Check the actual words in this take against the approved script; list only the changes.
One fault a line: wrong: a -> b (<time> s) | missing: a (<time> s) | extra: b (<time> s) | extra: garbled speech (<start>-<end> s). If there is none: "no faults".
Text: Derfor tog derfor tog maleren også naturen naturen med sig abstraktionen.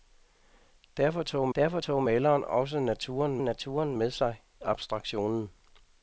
no faults